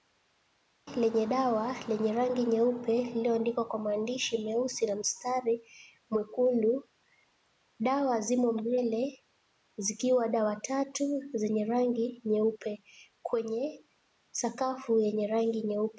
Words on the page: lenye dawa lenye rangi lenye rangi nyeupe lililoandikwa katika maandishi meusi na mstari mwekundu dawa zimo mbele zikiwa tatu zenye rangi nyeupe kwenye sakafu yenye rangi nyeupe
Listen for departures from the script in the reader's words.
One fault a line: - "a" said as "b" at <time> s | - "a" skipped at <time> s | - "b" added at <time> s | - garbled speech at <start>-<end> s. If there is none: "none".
- "lenye rangi" skipped at 2.4 s
- "katika" said as "kwa" at 3.7 s
- "dawa" added at 10.3 s